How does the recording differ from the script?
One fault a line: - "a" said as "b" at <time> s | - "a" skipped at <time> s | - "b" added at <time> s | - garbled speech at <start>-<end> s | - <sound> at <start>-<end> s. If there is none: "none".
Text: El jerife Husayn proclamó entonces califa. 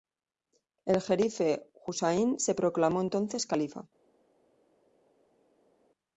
- "se" added at 2.4 s